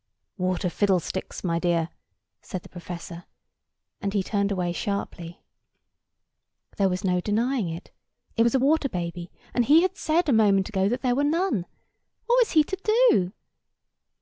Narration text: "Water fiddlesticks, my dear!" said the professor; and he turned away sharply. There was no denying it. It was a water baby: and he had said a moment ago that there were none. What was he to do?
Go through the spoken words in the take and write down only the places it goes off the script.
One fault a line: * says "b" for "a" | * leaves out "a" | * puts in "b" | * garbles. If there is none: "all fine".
all fine